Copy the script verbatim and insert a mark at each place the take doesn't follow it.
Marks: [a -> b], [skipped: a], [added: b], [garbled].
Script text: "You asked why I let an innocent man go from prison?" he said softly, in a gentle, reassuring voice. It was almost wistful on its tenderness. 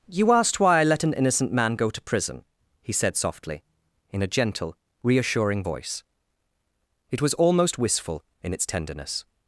"You asked why I let an innocent man go [from -> to] prison?" he said softly, in a gentle, reassuring voice. It was almost wistful [on -> in] its tenderness.